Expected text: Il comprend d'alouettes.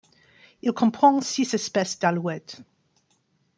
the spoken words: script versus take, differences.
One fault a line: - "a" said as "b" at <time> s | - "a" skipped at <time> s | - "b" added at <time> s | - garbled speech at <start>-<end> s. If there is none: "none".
- "six espèces" added at 1.2 s